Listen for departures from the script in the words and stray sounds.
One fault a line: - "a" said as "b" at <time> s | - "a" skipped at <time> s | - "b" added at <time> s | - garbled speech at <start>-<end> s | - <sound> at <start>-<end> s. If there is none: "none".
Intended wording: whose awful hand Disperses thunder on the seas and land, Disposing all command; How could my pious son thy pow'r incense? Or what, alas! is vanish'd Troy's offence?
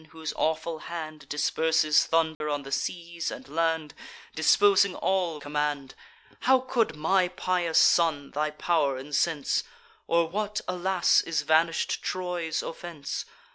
- dropout at 2.3-2.4 s